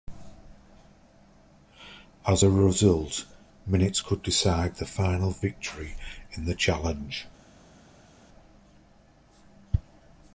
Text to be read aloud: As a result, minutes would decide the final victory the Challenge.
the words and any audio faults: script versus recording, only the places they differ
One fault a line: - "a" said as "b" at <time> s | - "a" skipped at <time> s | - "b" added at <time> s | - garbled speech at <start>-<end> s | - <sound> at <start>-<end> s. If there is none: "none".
- "would" said as "could" at 4.0 s
- "in" added at 6.3 s